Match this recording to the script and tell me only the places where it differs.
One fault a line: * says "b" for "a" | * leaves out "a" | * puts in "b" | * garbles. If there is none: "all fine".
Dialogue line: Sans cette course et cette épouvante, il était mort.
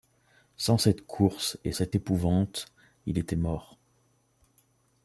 all fine